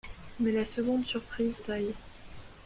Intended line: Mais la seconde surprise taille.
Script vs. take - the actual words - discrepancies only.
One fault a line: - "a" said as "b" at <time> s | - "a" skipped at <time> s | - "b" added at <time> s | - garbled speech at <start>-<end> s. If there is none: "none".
none